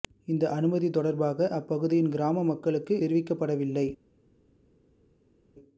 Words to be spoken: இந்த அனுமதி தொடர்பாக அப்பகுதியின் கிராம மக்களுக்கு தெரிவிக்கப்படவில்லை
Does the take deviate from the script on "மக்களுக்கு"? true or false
false